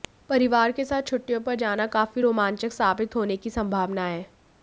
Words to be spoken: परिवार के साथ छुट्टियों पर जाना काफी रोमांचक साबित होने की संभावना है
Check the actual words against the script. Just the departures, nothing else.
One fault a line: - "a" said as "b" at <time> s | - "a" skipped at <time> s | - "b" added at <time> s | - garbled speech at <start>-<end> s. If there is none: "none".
none